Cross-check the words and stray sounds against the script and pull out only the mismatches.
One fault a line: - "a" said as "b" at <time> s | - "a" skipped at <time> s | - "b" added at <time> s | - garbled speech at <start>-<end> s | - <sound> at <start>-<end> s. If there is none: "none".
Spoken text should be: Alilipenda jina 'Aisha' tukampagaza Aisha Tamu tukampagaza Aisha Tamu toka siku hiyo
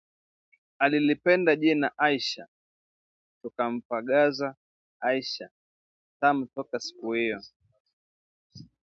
- "tukampagaza Aisha Tamu" skipped at 6.5 s